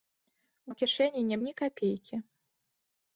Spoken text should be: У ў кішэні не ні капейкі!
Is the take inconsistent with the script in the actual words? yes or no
no